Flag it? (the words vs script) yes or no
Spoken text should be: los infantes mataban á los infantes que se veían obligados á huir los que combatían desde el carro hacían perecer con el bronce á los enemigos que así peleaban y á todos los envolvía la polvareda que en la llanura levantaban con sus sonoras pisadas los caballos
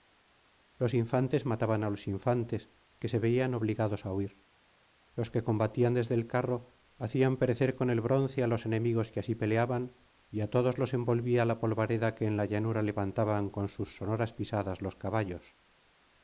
no